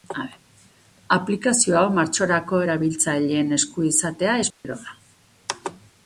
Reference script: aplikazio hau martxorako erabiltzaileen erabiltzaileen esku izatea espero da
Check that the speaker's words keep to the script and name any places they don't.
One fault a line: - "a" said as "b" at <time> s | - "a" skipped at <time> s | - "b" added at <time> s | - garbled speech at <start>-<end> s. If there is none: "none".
- "erabiltzaileen" skipped at 3.5 s